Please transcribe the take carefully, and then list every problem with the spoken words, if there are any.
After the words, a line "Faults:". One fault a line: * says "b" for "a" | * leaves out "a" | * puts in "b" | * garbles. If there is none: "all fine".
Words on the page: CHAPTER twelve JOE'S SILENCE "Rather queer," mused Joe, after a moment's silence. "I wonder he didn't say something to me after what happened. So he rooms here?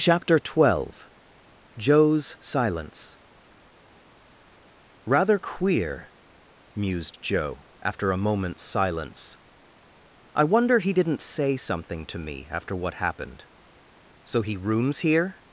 CHAPTER twelve JOE'S SILENCE "Rather queer," mused Joe, after a moment's silence. "I wonder he didn't say something to me after what happened. So he rooms here?
Faults:
all fine